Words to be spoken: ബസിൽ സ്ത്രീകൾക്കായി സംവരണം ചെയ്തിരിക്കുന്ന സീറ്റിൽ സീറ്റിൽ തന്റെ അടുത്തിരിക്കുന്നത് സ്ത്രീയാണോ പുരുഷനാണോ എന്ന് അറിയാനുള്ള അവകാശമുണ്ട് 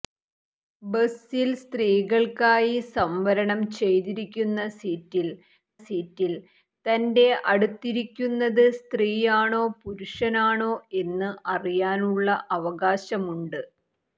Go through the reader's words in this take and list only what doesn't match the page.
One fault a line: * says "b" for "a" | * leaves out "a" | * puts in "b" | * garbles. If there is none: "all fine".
all fine